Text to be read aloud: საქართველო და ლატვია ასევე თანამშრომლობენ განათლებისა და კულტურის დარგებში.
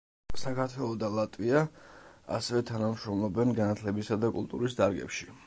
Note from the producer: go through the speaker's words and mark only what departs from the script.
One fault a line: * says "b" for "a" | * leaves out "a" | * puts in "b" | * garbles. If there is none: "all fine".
all fine